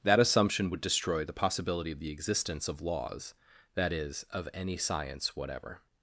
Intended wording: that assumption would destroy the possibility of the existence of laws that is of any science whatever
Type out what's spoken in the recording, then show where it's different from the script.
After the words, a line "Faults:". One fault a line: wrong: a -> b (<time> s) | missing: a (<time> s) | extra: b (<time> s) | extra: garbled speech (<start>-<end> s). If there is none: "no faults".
that assumption would destroy the possibility of the existence of laws that is of any science whatever
Faults:
no faults